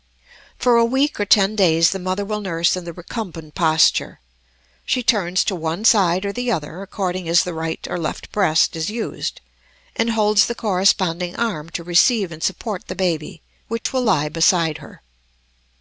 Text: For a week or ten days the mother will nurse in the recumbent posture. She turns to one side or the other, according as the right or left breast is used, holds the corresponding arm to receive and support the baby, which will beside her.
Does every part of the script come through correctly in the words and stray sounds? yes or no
no